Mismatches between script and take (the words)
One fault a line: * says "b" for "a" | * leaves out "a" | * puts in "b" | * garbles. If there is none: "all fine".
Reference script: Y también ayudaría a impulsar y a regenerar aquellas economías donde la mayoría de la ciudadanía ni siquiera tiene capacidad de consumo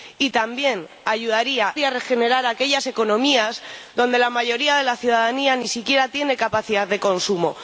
* leaves out "a impulsar"